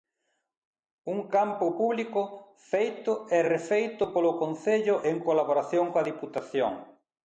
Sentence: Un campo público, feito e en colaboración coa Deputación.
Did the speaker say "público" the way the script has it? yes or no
yes